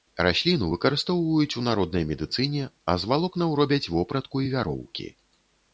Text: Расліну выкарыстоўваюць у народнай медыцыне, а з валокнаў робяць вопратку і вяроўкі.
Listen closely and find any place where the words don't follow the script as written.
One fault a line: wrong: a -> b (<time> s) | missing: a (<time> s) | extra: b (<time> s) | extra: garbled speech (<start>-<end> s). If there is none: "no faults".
no faults